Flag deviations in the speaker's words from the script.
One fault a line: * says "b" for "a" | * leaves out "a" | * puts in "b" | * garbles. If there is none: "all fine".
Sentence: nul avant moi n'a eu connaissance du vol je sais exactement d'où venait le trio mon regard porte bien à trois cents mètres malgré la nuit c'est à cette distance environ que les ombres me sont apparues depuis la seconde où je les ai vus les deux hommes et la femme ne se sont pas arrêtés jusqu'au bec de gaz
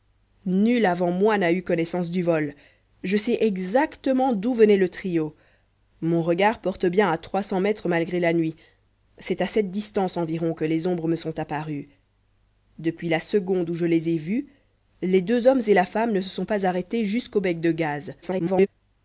* garbles